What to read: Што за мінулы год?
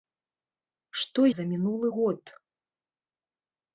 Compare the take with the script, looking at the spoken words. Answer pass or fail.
pass